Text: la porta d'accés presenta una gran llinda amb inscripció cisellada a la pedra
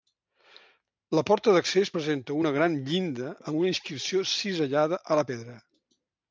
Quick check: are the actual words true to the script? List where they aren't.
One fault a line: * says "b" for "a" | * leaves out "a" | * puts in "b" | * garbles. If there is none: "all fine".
* puts in "una"